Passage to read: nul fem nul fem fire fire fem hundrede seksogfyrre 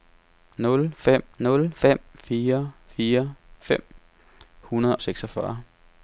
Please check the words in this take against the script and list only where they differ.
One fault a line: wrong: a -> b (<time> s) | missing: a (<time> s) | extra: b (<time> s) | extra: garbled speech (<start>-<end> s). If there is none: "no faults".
no faults